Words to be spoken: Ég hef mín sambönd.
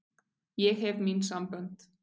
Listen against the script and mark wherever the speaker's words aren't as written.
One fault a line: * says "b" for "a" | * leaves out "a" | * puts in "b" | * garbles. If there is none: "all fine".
all fine